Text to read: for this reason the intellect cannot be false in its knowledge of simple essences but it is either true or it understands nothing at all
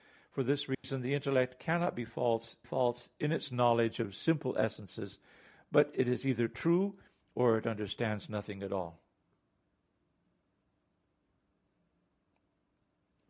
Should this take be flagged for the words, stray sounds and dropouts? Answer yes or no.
yes